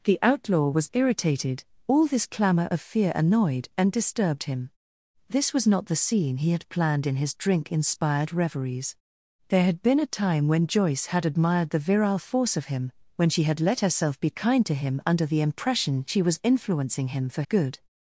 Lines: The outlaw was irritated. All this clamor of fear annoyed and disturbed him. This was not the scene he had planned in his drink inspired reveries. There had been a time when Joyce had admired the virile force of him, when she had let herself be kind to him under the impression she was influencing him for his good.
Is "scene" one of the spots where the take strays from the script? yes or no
no